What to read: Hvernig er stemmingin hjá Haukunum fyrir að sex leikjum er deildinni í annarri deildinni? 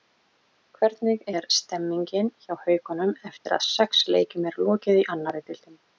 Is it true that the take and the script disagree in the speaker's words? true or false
true